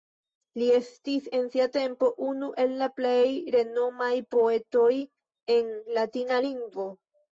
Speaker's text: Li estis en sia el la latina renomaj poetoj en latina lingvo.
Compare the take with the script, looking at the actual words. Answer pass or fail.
fail